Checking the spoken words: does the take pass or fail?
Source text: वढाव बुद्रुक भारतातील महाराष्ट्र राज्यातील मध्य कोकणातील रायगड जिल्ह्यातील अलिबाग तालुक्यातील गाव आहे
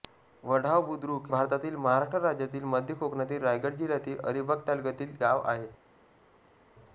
pass